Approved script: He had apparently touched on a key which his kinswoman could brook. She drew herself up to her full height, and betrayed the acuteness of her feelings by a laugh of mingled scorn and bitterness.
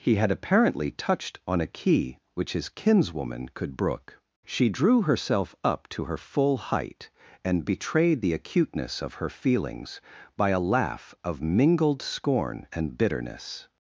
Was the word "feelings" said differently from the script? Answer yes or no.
no